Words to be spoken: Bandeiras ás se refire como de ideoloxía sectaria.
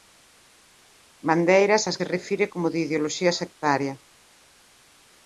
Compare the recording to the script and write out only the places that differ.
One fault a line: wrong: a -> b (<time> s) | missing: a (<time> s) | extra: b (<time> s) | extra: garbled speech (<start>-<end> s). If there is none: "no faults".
no faults